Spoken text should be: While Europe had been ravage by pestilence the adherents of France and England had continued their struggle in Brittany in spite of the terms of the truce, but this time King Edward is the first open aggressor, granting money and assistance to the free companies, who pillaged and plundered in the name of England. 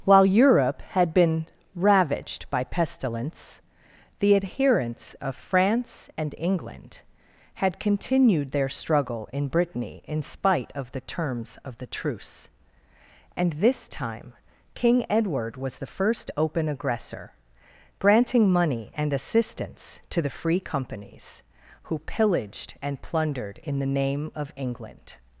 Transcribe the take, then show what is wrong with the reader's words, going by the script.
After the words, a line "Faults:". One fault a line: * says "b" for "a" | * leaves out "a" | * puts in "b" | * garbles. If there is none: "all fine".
While Europe had been ravaged by pestilence the adherents of France and England had continued their struggle in Brittany in spite of the terms of the truce, and this time King Edward was the first open aggressor, granting money and assistance to the free companies, who pillaged and plundered in the name of England.
Faults:
* says "ravaged" for "ravage"
* says "and" for "but"
* says "was" for "is"